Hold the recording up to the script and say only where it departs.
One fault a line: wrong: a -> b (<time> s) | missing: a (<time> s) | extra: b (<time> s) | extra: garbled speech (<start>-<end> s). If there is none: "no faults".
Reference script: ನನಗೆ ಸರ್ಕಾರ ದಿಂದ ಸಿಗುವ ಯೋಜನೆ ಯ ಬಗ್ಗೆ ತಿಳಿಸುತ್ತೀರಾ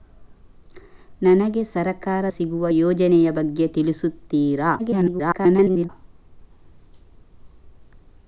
missing: ದಿಂದ (2.2 s)
extra: garbled speech (4.8-5.9 s)